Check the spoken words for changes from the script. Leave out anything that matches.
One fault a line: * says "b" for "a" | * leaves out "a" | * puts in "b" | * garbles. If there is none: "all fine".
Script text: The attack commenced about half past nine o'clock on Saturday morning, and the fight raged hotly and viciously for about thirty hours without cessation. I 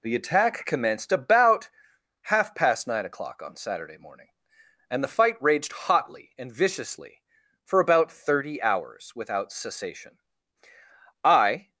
all fine